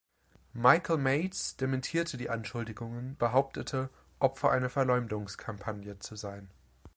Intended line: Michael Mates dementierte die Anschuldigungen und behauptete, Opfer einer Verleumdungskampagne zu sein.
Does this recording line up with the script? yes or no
no